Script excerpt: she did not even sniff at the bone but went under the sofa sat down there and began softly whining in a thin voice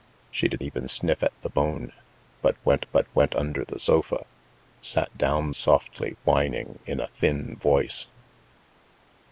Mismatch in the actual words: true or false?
true